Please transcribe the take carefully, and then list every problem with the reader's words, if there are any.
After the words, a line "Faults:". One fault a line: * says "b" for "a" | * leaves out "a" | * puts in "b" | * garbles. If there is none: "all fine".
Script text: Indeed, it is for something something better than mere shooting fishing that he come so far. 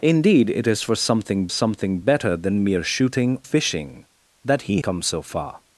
Indeed, it is for something something better than mere shooting fishing that he come so far.
Faults:
all fine